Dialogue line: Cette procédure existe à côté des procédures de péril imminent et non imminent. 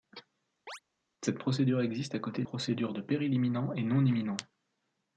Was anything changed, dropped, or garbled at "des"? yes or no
yes